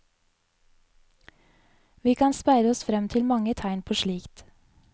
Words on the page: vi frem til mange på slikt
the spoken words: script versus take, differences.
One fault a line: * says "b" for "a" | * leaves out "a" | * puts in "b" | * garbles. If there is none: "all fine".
* puts in "kan speide oss"
* puts in "tegn"